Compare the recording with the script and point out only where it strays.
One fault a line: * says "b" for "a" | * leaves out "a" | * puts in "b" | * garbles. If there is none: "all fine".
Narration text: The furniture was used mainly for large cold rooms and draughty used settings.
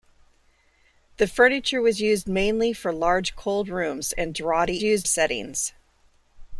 all fine